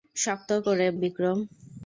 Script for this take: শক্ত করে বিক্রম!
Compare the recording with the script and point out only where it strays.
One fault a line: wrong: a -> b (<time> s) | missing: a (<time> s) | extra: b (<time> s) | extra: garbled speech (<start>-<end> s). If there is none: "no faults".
no faults